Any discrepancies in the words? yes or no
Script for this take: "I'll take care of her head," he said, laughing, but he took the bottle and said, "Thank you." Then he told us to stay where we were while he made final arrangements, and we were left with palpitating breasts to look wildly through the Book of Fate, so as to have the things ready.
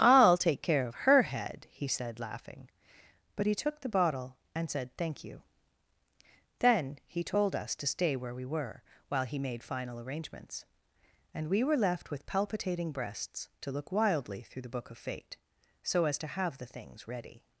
no